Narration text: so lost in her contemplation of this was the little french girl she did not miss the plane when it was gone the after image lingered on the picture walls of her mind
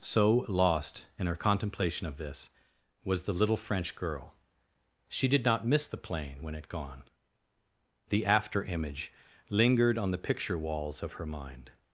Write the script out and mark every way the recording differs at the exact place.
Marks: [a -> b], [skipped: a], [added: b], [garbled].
so lost in her contemplation of this was the little french girl she did not miss the plane when it [skipped: was] gone the after image lingered on the picture walls of her mind